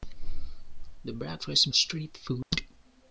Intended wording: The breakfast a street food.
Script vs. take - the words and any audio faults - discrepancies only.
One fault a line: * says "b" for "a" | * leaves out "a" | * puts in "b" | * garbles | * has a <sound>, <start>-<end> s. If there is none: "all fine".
* has a dropout, 2.4-2.5 s